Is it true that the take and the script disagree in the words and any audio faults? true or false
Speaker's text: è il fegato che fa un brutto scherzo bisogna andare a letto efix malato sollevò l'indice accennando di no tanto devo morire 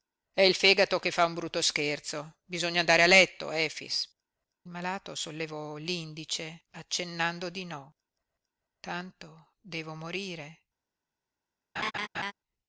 true